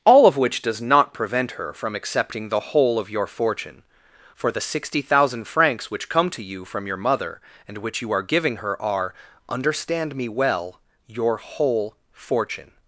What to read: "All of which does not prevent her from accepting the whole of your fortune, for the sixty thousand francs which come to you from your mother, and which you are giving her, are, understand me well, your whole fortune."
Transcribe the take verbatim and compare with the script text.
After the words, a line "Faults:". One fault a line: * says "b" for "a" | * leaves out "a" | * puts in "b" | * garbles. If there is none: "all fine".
"All of which does not prevent her from accepting the whole of your fortune, for the sixty thousand francs which come to you from your mother, and which you are giving her, are, understand me well, your whole fortune."
Faults:
all fine